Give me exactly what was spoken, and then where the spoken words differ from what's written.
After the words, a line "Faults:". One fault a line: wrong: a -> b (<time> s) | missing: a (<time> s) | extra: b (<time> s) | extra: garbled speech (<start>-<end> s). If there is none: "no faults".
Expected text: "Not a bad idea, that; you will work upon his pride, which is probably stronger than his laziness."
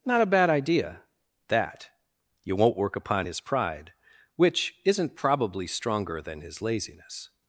"Not a bad idea, that; you won't work upon his pride, which isn't probably stronger than his laziness."
Faults:
wrong: will -> won't (2.5 s)
wrong: is -> isn't (4.9 s)